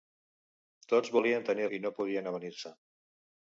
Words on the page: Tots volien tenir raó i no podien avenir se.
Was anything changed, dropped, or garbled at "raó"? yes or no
yes